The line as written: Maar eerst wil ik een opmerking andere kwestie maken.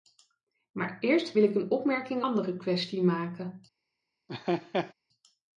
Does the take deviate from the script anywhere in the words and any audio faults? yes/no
yes